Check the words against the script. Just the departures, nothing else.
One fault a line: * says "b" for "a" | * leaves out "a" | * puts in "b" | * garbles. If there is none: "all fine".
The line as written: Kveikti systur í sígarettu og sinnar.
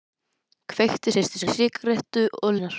all fine